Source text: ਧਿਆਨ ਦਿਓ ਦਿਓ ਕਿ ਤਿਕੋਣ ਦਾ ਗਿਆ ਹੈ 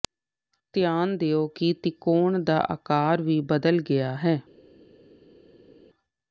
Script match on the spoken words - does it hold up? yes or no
no